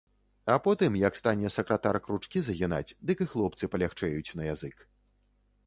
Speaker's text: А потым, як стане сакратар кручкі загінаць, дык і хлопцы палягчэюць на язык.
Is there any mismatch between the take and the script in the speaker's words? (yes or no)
no